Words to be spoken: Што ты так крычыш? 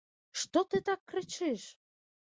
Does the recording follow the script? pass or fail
pass